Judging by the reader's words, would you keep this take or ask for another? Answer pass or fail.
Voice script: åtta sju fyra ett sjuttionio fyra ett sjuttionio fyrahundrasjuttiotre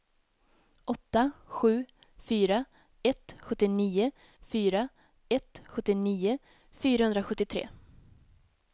pass